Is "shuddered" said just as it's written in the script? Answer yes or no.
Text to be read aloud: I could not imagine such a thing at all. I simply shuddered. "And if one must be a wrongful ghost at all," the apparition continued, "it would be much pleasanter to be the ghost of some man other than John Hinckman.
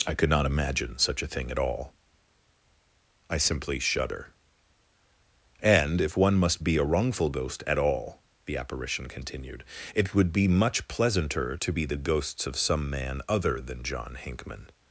no